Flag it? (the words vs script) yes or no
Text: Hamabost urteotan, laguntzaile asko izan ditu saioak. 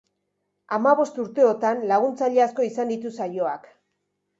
no